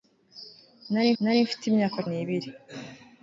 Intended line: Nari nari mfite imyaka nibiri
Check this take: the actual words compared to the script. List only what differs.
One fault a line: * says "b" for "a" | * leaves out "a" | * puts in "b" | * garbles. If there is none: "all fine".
all fine